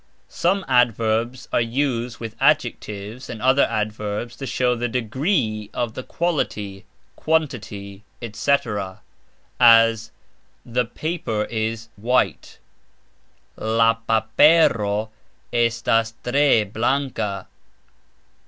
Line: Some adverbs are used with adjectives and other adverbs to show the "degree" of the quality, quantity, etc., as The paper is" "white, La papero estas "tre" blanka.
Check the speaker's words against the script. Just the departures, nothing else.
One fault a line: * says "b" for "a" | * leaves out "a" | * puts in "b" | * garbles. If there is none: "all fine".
all fine